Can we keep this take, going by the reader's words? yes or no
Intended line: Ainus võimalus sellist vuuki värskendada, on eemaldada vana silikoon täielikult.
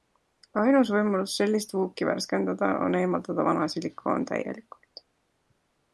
yes